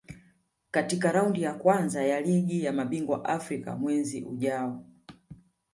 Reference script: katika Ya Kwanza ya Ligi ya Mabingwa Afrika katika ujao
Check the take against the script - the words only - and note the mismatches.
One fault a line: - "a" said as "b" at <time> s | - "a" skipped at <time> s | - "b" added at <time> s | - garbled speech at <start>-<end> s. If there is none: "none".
- "Raundi" added at 1.1 s
- "katika" said as "mwezi" at 3.7 s